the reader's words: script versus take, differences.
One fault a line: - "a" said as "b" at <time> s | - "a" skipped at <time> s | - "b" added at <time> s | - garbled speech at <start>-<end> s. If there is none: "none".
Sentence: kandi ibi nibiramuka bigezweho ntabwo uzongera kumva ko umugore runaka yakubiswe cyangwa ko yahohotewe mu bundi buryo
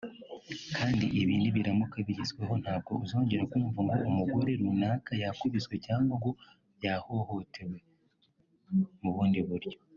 - "ko" said as "ngo" at 3.9 s
- "ko" said as "ngo" at 6.2 s